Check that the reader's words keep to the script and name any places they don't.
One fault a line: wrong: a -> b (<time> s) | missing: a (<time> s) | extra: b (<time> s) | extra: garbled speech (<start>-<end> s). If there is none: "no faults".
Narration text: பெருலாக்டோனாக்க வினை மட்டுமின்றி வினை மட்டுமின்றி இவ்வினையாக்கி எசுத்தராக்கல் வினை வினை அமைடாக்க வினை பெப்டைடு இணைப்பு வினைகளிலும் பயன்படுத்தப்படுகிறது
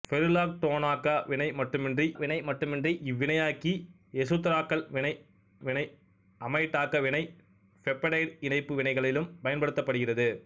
no faults